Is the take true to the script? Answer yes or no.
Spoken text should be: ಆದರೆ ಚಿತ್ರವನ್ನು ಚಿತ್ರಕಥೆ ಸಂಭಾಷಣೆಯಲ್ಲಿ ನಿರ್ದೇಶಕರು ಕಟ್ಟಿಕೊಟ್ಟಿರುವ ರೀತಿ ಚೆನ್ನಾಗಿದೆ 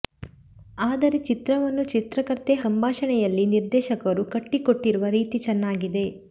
yes